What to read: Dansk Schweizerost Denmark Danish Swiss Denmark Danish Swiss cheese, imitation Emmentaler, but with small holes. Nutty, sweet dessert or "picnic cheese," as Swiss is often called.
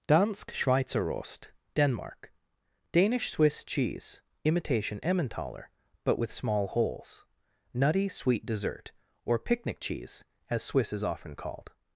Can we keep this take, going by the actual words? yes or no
no